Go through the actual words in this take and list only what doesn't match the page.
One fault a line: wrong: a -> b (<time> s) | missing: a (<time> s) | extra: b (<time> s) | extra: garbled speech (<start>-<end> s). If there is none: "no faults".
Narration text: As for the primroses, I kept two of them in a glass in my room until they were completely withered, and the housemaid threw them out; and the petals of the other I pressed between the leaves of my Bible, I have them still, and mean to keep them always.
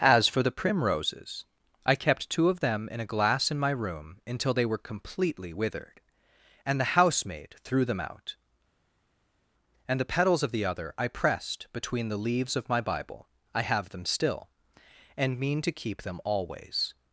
no faults